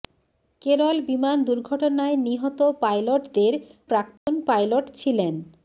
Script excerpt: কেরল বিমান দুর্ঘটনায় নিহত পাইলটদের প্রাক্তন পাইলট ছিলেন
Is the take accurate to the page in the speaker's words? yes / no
yes